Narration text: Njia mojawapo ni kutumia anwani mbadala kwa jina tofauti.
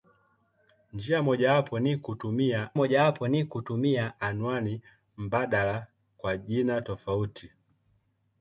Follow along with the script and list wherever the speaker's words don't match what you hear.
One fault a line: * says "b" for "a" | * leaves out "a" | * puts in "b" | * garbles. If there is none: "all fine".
* puts in "mojawapo ni kutumia"